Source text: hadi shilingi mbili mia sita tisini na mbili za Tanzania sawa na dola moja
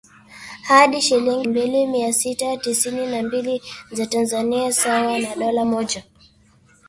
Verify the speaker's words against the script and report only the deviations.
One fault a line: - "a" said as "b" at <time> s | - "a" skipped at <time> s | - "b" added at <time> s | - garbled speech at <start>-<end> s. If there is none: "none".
none